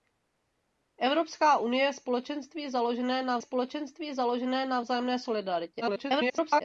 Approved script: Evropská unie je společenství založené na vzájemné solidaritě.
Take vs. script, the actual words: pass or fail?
fail